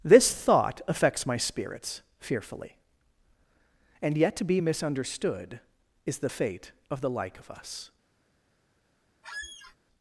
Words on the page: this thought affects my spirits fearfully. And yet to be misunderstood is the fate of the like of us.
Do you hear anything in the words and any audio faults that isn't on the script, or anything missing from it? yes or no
yes